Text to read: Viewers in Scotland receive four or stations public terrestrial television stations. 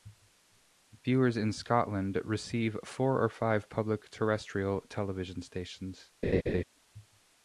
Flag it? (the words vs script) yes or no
yes